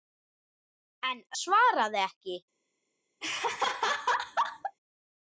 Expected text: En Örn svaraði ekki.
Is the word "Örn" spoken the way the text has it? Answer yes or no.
no